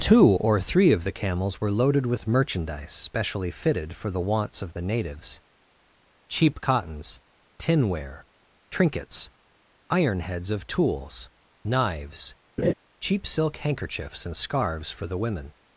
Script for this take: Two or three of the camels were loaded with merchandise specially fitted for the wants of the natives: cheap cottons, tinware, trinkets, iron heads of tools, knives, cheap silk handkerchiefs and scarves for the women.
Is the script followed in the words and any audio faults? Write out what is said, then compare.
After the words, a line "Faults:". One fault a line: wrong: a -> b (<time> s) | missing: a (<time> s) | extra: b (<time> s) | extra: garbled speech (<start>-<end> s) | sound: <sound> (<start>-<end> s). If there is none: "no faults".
Two or three of the camels were loaded with merchandise specially fitted for the wants of the natives: cheap cottons, tinware, trinkets, iron heads of tools, knives, cheap silk handkerchiefs and scarves for the women.
Faults:
sound: laugh (12.6-12.7 s)